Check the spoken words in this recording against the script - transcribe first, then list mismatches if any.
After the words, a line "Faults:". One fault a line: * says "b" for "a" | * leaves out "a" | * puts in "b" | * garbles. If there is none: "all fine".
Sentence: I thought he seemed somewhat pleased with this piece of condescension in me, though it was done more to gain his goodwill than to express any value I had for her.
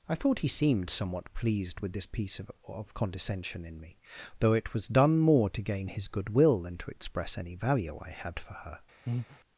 I thought he seemed somewhat pleased with this piece of of condescension in me, though it was done more to gain his goodwill than to express any value I had for her.
Faults:
* puts in "of"